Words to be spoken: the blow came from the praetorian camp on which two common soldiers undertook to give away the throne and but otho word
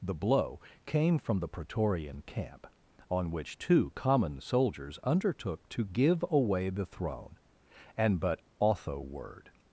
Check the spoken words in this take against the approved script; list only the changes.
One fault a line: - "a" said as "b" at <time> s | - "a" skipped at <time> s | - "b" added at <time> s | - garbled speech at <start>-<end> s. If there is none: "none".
none